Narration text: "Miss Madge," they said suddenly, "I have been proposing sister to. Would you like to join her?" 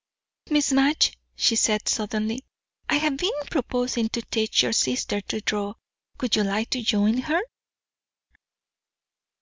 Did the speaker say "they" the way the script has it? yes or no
no